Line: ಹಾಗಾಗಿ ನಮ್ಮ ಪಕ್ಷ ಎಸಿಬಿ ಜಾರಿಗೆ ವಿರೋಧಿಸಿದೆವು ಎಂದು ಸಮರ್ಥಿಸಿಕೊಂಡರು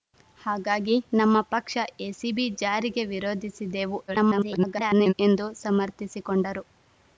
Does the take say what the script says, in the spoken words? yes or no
no